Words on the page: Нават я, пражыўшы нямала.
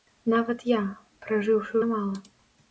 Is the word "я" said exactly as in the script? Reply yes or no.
yes